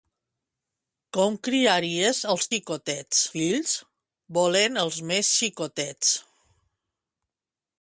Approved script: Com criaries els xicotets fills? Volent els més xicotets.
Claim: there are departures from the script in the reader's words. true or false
false